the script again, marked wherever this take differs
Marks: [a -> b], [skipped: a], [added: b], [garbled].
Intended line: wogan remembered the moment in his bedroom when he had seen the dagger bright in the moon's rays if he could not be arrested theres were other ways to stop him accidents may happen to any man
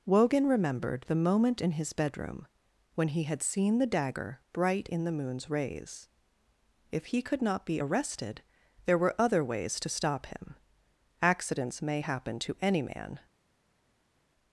wogan remembered the moment in his bedroom when he had seen the dagger bright in the moon's rays if he could not be arrested [theres -> there] were other ways to stop him accidents may happen to any man